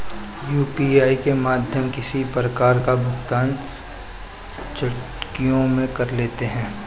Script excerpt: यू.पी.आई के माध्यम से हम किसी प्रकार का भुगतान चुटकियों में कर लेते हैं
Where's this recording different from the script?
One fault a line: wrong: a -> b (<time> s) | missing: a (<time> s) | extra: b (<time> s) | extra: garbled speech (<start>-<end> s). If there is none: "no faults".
missing: से हम (1.9 s)